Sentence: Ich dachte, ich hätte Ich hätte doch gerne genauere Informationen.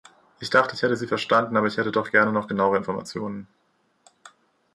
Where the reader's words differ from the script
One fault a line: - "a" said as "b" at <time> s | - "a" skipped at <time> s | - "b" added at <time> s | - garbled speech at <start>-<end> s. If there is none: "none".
- "Sie verstanden aber" added at 0.9 s
- "noch" added at 2.3 s